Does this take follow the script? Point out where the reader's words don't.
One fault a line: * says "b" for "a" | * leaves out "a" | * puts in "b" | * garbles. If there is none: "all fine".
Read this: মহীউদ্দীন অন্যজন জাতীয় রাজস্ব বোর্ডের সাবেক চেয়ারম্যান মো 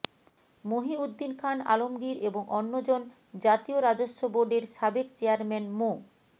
* puts in "খান আলমগীর এবং"